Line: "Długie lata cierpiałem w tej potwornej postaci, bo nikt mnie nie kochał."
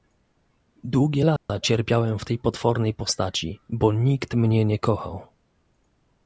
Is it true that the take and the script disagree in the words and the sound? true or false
true